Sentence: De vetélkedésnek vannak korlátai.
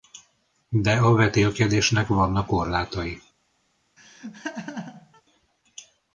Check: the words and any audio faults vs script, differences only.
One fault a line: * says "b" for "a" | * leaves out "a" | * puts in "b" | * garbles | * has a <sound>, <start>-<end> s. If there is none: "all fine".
* puts in "a"
* has a laugh, 4.0-5.2 s